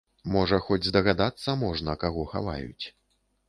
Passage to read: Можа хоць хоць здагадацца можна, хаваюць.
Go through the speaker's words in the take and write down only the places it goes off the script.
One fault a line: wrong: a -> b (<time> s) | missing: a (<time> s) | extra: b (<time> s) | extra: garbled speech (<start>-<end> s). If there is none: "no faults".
missing: хоць (0.9 s)
extra: каго (2.1 s)